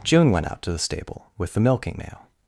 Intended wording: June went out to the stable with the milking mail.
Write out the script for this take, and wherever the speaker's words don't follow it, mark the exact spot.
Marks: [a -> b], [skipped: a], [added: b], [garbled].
June went out to the stable with the milking mail.